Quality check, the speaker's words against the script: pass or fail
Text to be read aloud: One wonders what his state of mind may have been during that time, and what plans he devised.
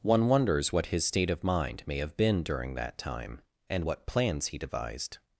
pass